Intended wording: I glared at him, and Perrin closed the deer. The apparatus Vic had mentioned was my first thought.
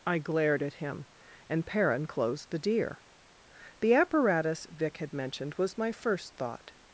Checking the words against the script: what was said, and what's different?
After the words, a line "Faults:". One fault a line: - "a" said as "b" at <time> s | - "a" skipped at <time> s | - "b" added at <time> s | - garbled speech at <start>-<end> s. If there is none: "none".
I glared at him, and Perrin closed the deer. The apparatus Vic had mentioned was my first thought.
Faults:
none